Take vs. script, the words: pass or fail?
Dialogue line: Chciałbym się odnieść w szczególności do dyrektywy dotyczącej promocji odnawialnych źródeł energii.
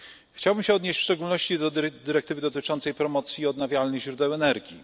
pass